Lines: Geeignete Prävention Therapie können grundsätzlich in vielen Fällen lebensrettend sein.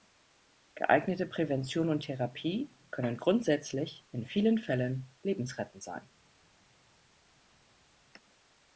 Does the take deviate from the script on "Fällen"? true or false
false